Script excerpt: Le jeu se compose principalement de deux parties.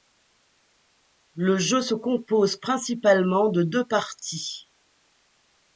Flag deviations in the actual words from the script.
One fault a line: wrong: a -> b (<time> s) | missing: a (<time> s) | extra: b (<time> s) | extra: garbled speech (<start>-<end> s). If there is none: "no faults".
no faults